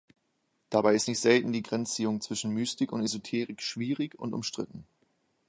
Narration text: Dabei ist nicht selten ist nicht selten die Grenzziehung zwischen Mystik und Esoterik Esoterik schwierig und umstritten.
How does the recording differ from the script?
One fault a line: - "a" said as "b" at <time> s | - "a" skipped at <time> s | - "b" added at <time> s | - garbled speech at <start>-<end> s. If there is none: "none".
- "ist nicht selten" skipped at 1.5 s
- "Esoterik" skipped at 3.6 s